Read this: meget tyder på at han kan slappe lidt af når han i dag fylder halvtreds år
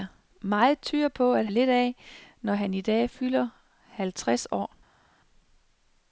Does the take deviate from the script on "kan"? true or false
true